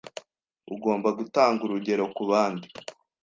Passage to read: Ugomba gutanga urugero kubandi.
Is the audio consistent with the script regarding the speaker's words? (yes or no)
yes